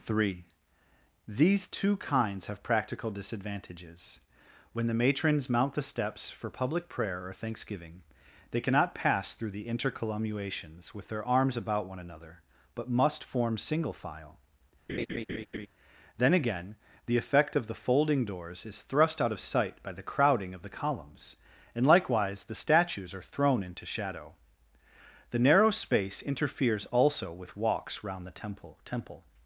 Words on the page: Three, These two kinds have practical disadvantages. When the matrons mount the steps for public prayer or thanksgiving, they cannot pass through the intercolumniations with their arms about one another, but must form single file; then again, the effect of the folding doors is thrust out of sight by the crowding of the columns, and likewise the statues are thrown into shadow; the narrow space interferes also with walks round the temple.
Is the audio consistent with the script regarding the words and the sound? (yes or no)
no